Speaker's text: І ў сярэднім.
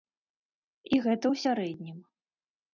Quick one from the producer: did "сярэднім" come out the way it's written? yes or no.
yes